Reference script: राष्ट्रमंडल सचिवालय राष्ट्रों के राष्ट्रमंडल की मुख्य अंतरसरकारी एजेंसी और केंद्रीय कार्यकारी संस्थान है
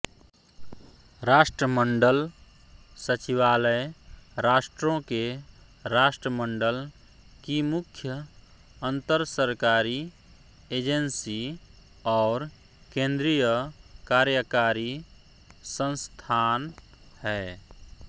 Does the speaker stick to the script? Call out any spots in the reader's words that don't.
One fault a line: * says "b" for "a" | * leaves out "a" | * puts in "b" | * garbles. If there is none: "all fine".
all fine